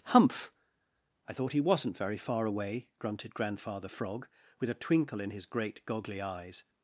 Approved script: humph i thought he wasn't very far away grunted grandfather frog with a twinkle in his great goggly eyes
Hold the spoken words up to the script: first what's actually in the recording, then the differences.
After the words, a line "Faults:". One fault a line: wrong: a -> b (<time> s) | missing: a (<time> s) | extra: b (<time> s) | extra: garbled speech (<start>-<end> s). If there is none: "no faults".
humph i thought he wasn't very far away grunted grandfather frog with a twinkle in his great goggly eyes
Faults:
no faults